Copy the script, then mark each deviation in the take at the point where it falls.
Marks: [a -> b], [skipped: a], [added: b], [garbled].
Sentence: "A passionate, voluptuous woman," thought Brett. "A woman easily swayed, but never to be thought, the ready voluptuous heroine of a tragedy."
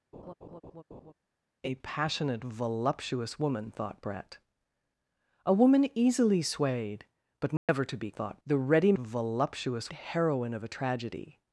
"A passionate, voluptuous woman," thought Brett. "A woman easily swayed, but never to be thought, the ready voluptuous heroine of a tragedy."